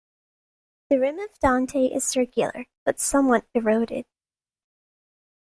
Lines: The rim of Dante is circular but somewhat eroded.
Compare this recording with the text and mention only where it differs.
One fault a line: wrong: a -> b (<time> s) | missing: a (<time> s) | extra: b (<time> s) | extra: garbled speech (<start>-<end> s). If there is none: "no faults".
no faults